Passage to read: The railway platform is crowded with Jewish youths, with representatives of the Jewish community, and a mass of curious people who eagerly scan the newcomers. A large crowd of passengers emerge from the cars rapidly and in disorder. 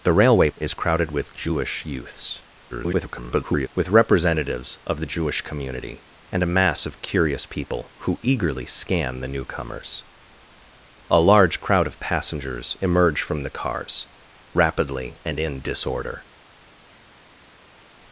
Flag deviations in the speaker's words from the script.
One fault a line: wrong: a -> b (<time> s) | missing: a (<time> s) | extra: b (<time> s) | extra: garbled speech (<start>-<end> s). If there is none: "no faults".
missing: platform (0.5 s)
extra: garbled speech (2.7-3.7 s)